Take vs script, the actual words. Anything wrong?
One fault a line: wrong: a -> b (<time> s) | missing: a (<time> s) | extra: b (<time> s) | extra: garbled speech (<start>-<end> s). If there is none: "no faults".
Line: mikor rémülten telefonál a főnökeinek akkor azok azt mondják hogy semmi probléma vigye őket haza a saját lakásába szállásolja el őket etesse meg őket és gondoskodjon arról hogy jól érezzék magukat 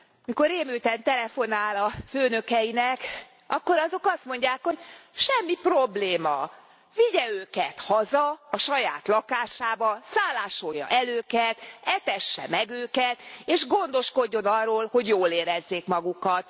no faults